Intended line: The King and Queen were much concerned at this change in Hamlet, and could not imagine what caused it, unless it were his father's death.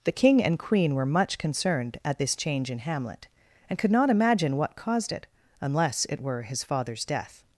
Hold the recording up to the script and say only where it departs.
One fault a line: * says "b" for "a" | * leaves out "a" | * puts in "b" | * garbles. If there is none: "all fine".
all fine